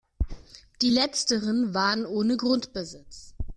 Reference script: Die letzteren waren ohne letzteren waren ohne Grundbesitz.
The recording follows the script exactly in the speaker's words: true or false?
false